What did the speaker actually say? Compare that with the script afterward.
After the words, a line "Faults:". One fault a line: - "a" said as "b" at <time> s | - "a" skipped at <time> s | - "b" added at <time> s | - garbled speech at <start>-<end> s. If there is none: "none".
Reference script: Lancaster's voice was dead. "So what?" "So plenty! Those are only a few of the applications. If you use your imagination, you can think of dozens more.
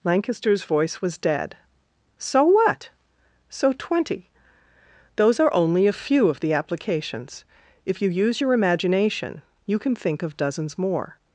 Lancaster's voice was dead. "So what?" "So twenty! Those are only a few of the applications. If you use your imagination, you can think of dozens more.
Faults:
- "plenty" said as "twenty" at 3.7 s